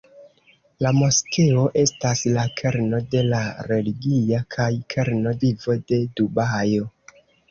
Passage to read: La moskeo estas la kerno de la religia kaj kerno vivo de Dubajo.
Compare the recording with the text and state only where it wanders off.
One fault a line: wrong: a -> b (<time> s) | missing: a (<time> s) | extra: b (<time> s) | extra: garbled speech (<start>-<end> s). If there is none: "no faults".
no faults